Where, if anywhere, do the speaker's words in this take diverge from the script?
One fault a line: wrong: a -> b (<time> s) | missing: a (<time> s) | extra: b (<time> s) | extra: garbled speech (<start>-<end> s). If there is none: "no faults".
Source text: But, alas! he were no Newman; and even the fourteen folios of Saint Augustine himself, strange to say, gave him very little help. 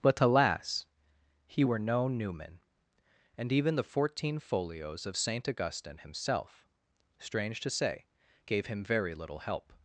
no faults